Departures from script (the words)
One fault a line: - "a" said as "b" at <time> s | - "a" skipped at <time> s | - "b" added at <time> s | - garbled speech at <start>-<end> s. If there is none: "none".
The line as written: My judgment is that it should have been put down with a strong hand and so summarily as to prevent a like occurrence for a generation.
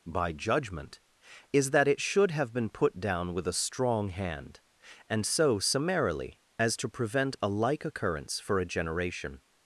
- "My" said as "By" at 0.1 s